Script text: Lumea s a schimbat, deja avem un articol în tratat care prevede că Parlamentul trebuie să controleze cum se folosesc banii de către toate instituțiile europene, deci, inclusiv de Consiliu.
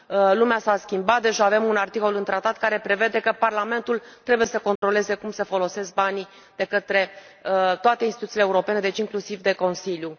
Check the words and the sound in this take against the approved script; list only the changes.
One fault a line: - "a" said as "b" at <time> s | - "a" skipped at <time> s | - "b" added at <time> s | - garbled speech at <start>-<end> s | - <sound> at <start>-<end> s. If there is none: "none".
- dropout at 4.8-4.8 s